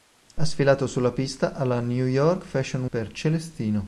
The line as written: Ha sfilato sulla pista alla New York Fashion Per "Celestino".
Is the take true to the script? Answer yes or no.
yes